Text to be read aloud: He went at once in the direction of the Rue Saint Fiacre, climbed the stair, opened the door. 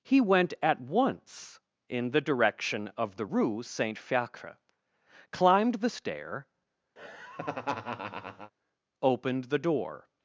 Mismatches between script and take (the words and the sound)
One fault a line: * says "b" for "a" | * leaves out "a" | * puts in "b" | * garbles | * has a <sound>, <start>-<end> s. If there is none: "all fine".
* has a laugh, 7.0-8.5 s